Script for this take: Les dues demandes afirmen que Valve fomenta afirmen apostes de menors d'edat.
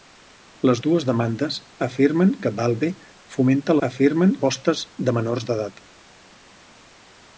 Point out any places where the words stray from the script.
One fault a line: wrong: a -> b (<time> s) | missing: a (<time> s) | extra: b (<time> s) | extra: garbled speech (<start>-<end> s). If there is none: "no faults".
no faults